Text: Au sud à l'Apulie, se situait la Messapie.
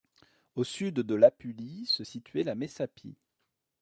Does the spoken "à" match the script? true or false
false